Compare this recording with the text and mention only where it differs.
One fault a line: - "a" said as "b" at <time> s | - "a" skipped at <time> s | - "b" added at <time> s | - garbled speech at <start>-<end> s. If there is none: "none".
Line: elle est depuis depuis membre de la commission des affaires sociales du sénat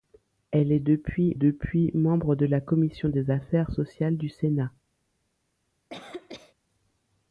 none